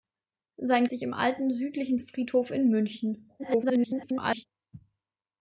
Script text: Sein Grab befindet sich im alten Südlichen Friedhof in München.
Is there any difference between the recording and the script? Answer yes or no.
yes